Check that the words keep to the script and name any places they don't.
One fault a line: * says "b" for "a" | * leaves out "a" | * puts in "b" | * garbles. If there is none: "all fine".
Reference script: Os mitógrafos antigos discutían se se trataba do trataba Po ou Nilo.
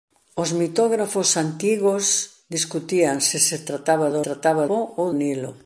all fine